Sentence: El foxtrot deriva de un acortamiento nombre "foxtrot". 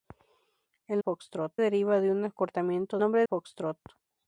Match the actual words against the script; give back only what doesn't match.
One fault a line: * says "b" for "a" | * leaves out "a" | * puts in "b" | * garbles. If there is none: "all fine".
all fine